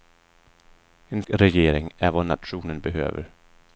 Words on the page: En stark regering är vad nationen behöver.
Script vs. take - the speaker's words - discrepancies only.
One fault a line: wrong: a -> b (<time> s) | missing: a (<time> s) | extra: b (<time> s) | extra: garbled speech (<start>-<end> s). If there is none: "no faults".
missing: stark (1.2 s)